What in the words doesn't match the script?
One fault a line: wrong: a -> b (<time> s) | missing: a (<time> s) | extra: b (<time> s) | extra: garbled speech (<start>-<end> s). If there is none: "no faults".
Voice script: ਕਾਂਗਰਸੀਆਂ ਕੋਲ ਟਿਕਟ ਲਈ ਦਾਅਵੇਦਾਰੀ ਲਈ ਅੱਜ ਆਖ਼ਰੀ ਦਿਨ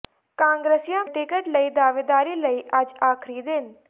missing: ਕੋਲ (1.0 s)